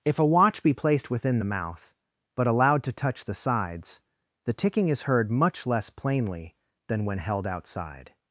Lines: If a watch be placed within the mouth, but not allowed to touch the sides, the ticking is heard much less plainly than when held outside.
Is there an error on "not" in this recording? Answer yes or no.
yes